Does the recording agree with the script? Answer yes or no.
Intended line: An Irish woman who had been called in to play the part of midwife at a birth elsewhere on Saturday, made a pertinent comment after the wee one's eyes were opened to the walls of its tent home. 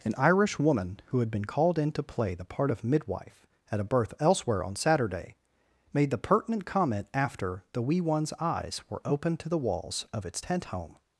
no